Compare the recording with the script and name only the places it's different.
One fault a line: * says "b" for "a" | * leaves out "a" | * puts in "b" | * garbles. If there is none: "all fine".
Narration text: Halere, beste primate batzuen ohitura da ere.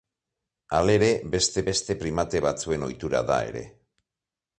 * puts in "beste"